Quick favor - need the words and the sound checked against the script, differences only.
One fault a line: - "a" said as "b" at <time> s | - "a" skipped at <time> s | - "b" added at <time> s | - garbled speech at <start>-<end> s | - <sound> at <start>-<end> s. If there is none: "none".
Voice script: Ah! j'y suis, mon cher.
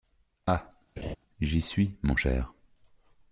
- laugh at 1.0-1.2 s